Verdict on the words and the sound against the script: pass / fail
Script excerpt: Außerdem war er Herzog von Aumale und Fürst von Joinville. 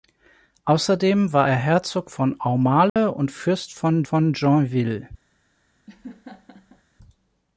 fail